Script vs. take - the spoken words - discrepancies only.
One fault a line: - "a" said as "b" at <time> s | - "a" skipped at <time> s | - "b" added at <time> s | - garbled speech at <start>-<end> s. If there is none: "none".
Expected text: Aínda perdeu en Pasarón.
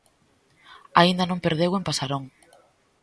- "non" added at 1.3 s